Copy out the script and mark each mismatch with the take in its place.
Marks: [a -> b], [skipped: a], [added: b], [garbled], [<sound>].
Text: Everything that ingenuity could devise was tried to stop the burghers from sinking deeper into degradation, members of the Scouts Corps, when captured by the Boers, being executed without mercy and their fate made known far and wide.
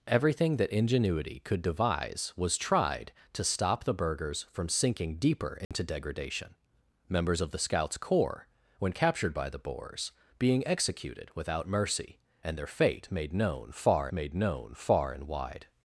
Everything that ingenuity could devise was tried to stop the burghers from sinking deeper into [dropout] degradation, members of the Scouts Corps, when captured by the Boers, being executed without mercy and their fate made known far [added: made known far] and wide.